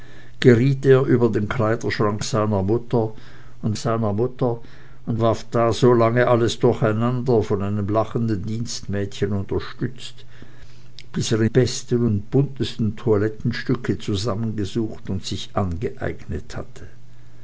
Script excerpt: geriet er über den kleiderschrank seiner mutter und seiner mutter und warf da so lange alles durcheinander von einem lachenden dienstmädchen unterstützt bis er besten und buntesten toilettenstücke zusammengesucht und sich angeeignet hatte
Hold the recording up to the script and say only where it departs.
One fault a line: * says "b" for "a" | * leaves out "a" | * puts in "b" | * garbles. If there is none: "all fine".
all fine